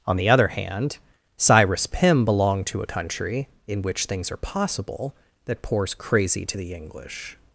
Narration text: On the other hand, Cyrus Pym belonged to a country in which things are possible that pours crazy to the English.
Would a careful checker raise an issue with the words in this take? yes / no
no